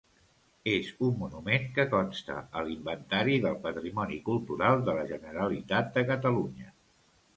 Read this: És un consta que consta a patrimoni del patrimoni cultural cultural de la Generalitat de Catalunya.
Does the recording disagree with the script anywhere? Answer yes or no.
yes